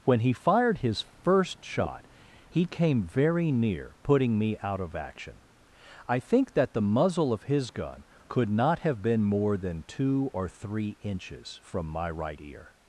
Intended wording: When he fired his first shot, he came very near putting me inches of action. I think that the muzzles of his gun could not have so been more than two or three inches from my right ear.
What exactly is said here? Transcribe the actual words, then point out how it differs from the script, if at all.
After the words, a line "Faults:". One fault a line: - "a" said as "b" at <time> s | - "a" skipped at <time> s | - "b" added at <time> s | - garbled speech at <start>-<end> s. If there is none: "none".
When he fired his first shot, he came very near putting me out of action. I think that the muzzle of his gun could not have been more than two or three inches from my right ear.
Faults:
- "inches" said as "out" at 4.6 s
- "muzzles" said as "muzzle" at 6.8 s
- "so" skipped at 9.0 s